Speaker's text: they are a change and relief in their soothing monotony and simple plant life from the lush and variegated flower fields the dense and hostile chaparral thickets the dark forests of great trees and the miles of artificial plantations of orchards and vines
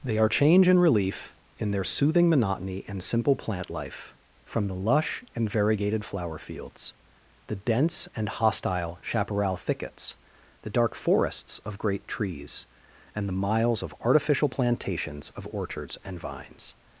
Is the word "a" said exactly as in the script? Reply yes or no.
no